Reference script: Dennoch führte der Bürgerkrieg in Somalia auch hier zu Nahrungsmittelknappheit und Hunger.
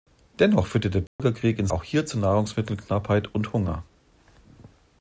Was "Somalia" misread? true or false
true